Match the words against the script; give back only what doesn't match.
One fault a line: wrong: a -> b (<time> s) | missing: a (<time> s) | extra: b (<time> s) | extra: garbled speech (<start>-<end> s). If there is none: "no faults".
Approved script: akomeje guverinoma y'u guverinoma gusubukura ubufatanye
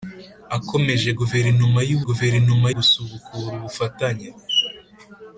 no faults